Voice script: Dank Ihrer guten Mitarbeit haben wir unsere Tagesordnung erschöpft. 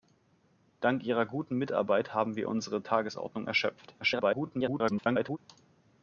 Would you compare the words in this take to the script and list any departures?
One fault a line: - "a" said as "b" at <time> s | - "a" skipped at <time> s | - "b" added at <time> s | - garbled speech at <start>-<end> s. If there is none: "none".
- garbled speech at 4.0-5.4 s